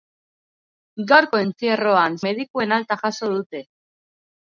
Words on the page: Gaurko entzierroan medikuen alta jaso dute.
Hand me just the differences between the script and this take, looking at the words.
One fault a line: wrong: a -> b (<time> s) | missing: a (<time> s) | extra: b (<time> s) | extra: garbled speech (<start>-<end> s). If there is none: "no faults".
no faults